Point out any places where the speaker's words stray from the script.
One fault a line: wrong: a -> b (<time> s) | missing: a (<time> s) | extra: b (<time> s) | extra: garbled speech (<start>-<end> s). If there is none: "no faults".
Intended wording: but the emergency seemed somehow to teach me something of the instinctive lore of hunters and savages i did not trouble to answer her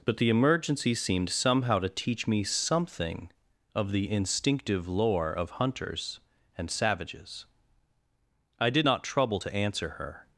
no faults